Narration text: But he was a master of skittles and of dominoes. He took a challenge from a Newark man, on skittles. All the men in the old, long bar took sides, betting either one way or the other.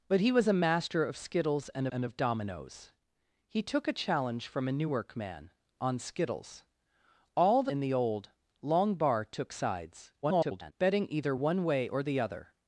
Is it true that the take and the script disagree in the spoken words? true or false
true